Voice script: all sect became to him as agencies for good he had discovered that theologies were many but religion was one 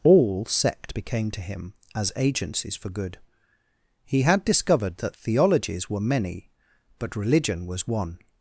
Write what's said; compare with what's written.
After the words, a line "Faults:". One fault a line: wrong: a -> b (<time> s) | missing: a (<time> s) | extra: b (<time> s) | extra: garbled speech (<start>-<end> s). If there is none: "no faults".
all sect became to him as agencies for good he had discovered that theologies were many but religion was one
Faults:
no faults